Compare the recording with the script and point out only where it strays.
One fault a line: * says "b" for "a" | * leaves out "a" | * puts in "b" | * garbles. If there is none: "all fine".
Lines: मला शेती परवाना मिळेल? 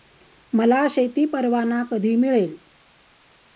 * puts in "कधी"